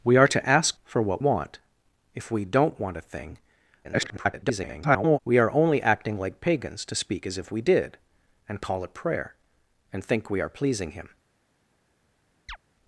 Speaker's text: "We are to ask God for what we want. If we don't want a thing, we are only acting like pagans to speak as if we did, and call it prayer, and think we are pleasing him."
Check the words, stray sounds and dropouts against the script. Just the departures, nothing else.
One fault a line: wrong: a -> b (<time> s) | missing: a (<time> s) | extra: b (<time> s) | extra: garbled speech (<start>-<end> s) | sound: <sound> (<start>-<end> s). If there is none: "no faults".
missing: God (0.8 s)
missing: we (1.2 s)
extra: garbled speech (3.8-5.2 s)
sound: chirp (12.5-12.6 s)